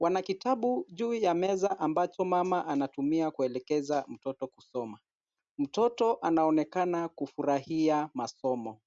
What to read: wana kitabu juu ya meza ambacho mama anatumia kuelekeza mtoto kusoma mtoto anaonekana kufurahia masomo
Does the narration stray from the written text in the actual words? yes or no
no